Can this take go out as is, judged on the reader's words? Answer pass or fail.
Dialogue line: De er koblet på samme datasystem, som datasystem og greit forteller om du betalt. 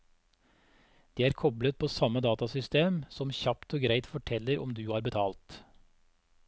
fail